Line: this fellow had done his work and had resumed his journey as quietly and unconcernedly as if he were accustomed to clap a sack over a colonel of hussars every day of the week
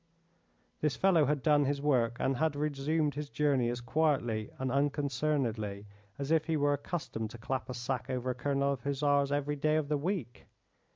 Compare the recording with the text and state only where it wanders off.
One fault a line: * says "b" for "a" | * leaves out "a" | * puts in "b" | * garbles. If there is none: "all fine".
all fine